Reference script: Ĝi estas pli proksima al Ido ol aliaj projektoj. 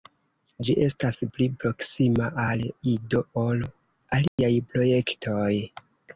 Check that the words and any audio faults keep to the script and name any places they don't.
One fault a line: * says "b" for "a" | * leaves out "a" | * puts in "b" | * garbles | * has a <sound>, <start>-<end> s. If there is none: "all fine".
* has a dropout, 4.3-4.4 s